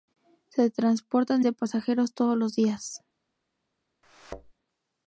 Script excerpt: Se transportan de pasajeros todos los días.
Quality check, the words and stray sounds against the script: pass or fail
fail